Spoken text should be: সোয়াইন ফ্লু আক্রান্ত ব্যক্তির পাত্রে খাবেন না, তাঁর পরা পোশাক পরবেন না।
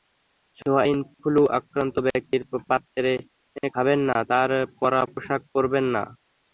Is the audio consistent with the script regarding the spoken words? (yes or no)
yes